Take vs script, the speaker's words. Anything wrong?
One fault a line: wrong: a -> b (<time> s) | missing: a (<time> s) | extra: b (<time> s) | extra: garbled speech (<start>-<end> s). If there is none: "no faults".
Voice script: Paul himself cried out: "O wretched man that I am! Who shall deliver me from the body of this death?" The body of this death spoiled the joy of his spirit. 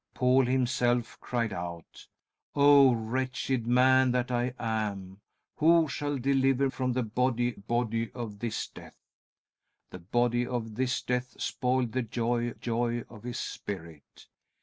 missing: me (6.7 s)
extra: body (7.5 s)
extra: joy (12.5 s)